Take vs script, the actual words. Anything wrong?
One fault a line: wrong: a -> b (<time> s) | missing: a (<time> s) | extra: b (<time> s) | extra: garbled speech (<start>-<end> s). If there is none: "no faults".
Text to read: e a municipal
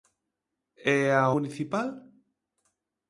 no faults